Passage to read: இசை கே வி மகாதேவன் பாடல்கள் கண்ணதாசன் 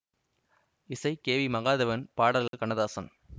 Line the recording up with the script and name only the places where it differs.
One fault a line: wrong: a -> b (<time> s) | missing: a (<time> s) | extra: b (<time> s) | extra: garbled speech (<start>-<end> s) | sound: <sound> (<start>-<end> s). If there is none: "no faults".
sound: dropout (2.5-2.5 s)